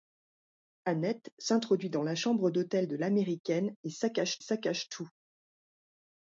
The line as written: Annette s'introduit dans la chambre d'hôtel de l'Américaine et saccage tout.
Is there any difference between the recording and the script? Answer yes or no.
yes